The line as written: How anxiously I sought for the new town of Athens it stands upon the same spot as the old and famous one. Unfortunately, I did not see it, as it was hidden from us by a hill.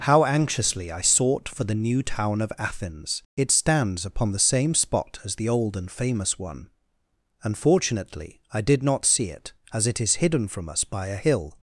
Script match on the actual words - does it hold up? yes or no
no